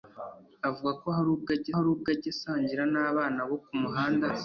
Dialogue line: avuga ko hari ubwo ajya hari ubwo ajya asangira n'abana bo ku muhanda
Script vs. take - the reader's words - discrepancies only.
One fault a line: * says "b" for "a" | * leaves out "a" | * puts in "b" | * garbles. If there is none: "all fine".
all fine